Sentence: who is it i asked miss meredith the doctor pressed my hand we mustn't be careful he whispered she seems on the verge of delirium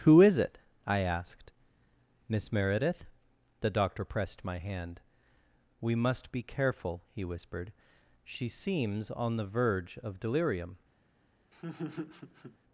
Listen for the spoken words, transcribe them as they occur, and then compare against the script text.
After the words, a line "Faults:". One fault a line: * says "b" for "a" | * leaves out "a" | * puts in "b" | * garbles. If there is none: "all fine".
who is it i asked miss meredith the doctor pressed my hand we must be careful he whispered she seems on the verge of delirium
Faults:
* says "must" for "mustn't"